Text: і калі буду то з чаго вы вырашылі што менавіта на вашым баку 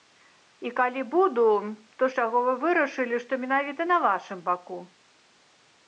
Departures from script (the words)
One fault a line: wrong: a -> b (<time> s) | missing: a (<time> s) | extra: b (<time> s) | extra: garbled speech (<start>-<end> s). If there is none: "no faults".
no faults